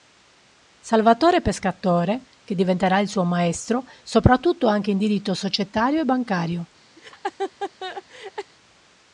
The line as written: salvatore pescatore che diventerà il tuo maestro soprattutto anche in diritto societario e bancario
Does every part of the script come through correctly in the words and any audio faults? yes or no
no